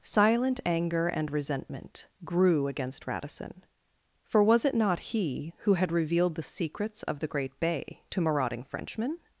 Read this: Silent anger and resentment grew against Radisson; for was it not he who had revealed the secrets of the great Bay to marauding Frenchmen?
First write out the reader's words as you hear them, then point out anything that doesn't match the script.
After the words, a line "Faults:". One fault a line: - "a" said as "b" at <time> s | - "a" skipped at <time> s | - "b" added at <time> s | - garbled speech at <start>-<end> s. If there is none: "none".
Silent anger and resentment grew against Radisson; for was it not he who had revealed the secrets of the great Bay to marauding Frenchmen?
Faults:
none